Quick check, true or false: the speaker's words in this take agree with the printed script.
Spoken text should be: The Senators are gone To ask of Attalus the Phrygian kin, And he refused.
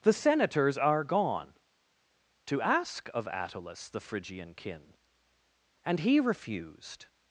true